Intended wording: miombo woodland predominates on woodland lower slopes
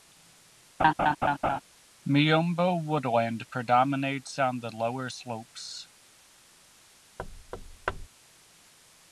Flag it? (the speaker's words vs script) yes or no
yes